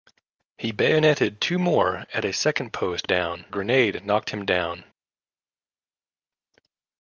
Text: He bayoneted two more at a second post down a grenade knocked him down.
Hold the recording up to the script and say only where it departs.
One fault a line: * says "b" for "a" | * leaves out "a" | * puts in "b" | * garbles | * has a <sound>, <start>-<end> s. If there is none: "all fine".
all fine